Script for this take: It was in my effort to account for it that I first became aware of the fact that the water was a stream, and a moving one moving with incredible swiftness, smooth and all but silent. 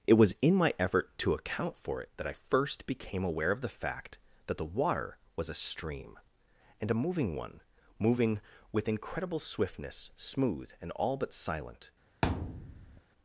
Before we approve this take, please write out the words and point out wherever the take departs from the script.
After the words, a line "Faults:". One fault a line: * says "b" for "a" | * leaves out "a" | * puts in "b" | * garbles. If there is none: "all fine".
It was in my effort to account for it that I first became aware of the fact that the water was a stream, and a moving one moving with incredible swiftness, smooth and all but silent.
Faults:
all fine